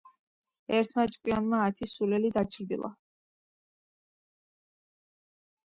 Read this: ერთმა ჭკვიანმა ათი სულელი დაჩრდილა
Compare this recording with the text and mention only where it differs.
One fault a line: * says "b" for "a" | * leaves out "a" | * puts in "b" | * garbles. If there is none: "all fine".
all fine